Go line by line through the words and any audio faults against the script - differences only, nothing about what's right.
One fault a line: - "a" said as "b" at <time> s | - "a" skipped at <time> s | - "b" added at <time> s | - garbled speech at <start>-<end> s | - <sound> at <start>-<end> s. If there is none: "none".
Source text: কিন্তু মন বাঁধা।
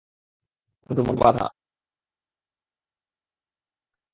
none